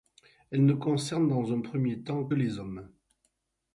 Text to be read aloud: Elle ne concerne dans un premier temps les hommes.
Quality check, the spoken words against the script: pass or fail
pass